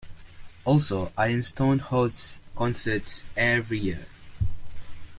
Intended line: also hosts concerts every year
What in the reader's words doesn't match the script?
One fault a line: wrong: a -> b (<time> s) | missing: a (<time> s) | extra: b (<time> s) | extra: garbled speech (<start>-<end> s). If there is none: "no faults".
extra: ironstone (1.1 s)